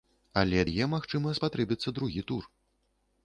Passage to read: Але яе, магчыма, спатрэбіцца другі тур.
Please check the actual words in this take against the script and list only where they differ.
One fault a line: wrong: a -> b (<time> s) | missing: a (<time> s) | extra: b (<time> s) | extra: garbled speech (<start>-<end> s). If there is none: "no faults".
no faults